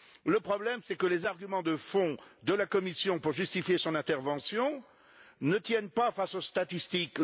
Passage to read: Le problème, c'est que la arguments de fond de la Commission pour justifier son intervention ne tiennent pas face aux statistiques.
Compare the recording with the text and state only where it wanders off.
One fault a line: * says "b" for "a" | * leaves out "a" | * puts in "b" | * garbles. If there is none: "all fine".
* says "les" for "la"